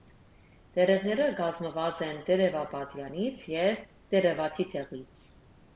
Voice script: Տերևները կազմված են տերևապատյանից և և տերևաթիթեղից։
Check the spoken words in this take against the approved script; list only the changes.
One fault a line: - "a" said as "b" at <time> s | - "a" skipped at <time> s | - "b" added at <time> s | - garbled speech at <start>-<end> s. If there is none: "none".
- "և" skipped at 3.9 s